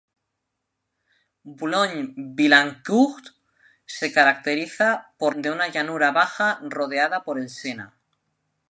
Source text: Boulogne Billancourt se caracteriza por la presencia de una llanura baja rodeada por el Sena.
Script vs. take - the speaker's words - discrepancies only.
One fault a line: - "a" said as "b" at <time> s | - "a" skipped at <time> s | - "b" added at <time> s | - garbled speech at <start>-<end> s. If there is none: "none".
- "la presencia" skipped at 5.3 s